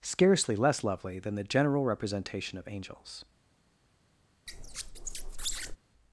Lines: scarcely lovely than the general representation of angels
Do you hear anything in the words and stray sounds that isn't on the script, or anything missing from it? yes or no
yes